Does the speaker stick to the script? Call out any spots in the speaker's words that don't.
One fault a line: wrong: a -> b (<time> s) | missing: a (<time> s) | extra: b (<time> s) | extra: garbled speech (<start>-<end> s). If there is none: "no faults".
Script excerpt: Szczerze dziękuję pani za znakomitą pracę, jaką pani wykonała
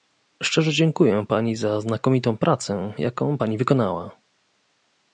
no faults